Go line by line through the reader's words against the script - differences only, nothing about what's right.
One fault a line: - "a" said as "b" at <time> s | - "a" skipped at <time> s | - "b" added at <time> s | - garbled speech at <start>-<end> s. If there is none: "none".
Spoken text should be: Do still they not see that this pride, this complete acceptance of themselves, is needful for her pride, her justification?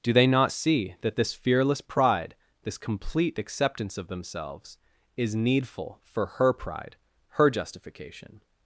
- "still" skipped at 0.1 s
- "fearless" added at 1.3 s